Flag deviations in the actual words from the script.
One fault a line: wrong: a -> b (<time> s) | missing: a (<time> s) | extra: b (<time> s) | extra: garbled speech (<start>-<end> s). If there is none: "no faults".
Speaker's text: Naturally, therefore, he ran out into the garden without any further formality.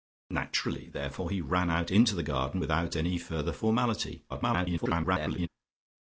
extra: garbled speech (4.3-5.5 s)